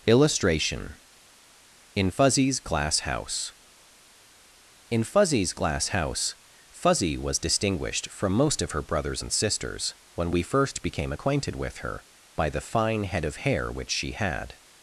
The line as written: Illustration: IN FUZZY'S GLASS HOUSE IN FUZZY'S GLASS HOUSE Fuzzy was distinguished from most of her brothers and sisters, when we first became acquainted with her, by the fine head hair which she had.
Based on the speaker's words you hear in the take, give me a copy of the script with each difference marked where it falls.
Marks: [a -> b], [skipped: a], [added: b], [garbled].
Illustration: IN FUZZY'S GLASS HOUSE IN FUZZY'S GLASS HOUSE Fuzzy was distinguished from most of her brothers and sisters, when we first became acquainted with her, by the fine head [added: of] hair which she had.